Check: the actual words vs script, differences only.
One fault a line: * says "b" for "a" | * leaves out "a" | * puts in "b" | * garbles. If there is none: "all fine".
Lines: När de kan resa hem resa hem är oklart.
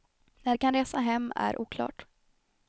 * leaves out "resa hem"